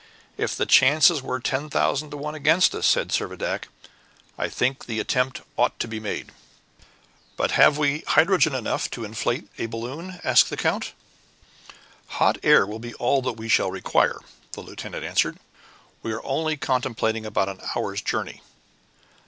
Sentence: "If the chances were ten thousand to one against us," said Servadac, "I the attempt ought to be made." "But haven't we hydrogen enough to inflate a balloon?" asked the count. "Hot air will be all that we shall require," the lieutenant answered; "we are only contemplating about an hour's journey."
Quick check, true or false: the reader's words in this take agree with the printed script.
false